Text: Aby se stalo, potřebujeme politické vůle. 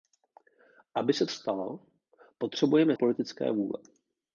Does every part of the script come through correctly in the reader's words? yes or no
yes